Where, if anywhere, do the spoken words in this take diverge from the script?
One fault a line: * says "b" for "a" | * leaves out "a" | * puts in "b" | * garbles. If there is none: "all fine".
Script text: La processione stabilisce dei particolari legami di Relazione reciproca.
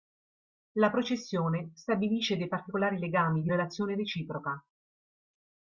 all fine